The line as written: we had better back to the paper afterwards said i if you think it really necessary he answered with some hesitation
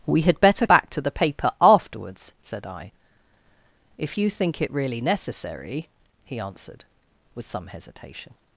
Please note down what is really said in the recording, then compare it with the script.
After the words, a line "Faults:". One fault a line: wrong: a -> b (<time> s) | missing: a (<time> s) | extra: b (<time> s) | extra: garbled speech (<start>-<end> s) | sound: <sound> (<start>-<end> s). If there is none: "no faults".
we had better back to the paper afterwards said i if you think it really necessary he answered with some hesitation
Faults:
no faults